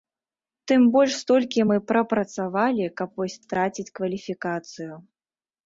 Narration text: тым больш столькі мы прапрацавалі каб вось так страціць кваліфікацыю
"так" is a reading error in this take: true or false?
true